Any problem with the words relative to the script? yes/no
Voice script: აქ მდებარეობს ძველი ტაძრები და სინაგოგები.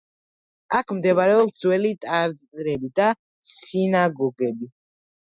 no